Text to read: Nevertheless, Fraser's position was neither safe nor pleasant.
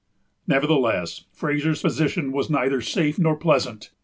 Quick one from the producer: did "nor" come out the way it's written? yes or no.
yes